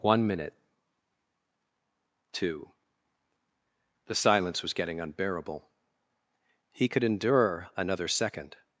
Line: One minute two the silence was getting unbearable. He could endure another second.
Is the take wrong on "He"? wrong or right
right